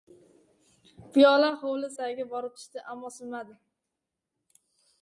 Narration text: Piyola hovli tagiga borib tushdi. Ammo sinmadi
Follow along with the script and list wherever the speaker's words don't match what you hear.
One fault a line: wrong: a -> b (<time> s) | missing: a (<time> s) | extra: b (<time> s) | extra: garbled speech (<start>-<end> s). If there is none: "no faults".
no faults